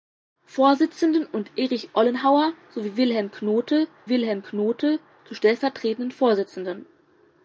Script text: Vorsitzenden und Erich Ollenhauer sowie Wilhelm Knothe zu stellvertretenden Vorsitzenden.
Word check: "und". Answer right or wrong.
right